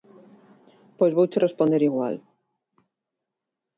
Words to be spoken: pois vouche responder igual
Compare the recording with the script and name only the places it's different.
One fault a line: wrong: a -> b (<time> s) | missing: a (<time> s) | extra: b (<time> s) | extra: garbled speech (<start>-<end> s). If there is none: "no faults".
no faults